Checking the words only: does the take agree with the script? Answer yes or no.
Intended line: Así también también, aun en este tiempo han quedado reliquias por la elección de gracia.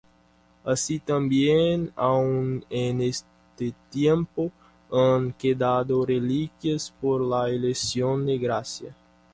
no